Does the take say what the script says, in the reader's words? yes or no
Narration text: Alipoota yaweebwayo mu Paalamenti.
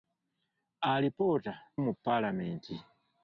no